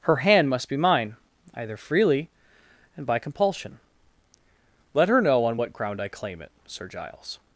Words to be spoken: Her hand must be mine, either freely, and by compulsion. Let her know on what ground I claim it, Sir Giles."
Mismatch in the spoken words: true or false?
false